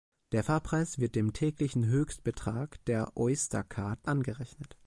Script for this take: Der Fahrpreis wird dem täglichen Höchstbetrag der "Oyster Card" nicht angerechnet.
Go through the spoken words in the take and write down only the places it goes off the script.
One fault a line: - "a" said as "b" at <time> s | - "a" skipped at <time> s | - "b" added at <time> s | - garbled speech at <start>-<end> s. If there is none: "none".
- "nicht" skipped at 4.1 s